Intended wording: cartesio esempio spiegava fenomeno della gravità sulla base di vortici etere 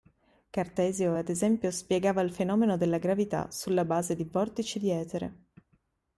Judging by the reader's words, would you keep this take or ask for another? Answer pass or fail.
fail